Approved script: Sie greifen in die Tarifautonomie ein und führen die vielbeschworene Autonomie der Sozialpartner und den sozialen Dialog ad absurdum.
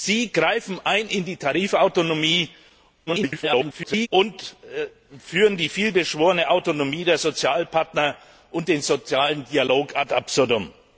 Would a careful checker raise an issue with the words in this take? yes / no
yes